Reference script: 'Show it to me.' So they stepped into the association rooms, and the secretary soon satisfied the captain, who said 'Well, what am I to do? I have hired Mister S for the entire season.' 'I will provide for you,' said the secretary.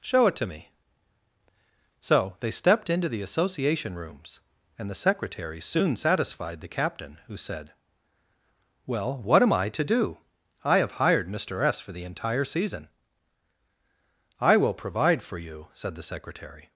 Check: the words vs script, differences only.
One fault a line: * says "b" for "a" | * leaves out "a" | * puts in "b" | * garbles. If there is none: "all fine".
all fine